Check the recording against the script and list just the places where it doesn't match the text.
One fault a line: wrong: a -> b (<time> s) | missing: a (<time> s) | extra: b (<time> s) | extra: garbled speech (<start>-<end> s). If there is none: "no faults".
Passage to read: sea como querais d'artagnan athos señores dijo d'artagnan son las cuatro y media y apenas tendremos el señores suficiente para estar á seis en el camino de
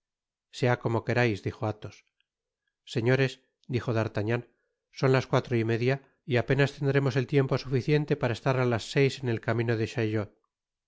wrong: d'artagnan -> dijo (1.5 s)
wrong: señores -> tiempo (7.3 s)
extra: las (8.7 s)